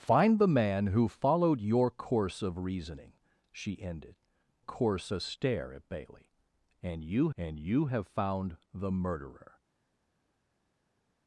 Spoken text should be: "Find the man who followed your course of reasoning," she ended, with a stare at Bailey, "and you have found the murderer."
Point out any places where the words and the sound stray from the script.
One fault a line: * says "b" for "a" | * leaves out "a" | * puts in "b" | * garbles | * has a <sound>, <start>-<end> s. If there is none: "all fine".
* says "course" for "with"
* puts in "and you"